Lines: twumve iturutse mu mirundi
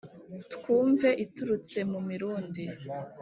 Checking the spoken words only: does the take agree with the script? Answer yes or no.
yes